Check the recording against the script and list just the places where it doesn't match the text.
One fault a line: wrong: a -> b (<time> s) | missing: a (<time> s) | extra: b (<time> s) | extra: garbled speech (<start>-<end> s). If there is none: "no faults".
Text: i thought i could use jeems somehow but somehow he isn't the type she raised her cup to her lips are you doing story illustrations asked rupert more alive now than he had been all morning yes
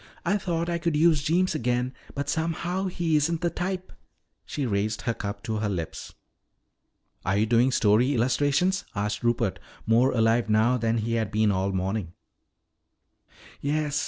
wrong: somehow -> again (1.5 s)